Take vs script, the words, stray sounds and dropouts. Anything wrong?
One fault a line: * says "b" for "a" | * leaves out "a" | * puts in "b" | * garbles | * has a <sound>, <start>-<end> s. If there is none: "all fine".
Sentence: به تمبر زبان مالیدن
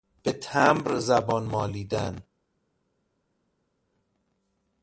all fine